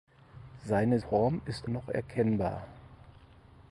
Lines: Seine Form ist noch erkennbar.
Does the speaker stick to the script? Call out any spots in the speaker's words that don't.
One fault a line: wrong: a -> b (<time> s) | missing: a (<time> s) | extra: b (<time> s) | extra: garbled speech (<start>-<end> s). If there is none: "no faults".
no faults